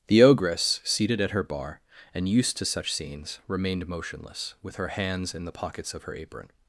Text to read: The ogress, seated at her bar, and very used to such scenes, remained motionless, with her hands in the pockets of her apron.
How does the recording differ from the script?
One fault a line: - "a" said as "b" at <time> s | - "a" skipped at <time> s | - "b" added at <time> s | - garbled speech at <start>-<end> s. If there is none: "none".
- "very" skipped at 2.3 s